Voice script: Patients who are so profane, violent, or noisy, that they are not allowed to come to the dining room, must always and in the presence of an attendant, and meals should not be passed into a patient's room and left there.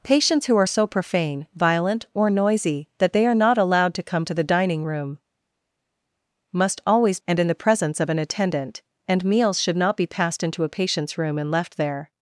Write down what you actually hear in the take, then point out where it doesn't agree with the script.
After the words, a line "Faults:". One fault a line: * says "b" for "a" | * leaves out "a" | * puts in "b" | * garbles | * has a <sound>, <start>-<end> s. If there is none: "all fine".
Patients who are so profane, violent, or noisy, that they are not allowed to come to the dining room, must always and in the presence of an attendant, and meals should not be passed into a patient's room and left there.
Faults:
all fine